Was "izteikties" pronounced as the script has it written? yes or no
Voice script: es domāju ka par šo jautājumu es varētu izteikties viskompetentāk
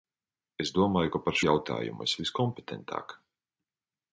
no